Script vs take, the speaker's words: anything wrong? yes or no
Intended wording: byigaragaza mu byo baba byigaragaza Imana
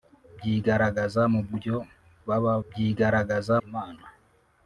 no